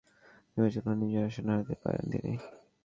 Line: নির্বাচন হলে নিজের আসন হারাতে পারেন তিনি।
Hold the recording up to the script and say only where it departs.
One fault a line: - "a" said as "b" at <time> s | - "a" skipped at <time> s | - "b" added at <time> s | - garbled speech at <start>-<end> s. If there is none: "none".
none